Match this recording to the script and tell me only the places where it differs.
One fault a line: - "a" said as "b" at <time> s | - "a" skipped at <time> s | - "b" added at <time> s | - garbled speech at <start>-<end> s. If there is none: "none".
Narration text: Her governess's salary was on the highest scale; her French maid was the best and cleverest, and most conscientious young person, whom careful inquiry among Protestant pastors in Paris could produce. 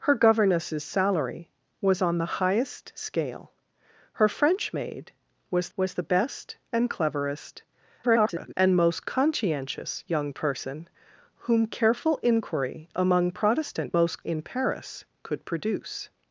- "was" added at 5.8 s
- garbled speech at 8.0-8.5 s
- "pastors" said as "most" at 13.9 s